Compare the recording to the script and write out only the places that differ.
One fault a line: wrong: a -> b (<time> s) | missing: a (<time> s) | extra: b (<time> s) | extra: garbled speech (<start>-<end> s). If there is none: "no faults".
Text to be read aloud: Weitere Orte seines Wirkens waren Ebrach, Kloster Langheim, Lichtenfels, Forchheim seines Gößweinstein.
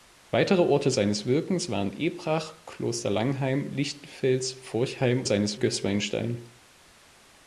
no faults